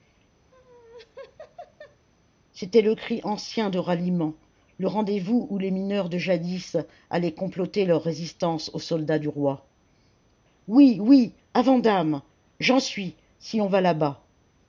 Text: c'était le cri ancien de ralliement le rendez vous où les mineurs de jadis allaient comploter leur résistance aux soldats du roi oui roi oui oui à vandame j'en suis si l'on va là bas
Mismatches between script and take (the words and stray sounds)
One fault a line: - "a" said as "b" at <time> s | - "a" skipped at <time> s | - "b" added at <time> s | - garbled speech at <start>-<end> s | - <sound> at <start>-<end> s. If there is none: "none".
- laugh at 0.5-2.1 s
- "roi oui" skipped at 11.0 s